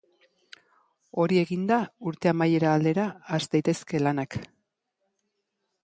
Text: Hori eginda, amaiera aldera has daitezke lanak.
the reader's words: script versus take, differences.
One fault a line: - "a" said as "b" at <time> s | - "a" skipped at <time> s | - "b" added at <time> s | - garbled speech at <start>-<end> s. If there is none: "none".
- "urte" added at 2.1 s